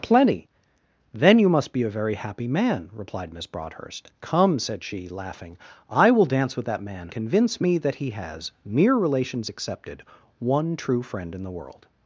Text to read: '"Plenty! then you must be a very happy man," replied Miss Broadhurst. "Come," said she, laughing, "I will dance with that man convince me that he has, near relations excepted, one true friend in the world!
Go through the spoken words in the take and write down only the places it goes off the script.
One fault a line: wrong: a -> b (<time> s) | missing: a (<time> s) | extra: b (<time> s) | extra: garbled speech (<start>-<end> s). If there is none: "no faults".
no faults